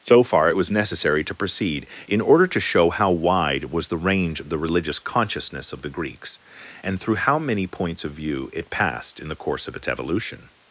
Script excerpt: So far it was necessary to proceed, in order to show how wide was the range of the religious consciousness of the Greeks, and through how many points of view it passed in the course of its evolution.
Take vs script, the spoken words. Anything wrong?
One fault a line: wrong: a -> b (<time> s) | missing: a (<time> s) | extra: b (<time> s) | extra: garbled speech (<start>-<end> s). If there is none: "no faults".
no faults